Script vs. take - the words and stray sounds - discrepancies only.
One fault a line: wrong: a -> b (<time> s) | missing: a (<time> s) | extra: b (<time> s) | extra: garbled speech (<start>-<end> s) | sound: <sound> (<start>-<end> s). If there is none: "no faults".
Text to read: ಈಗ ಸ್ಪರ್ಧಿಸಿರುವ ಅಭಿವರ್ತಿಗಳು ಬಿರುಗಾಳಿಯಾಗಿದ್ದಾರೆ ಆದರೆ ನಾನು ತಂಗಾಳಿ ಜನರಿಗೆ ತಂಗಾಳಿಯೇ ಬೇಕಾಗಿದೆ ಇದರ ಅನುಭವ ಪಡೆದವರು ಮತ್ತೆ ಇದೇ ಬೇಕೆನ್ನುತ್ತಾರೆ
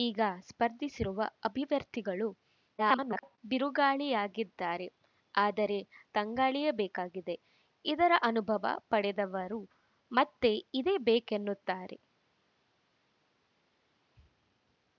extra: garbled speech (2.8-3.4 s)
missing: ನಾನು ತಂಗಾಳಿ ಜನರಿಗೆ (5.8 s)